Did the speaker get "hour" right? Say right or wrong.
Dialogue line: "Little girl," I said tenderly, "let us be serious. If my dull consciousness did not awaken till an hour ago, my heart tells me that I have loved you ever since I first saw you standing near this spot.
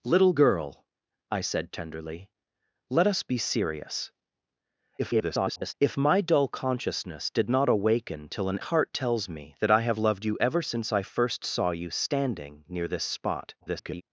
wrong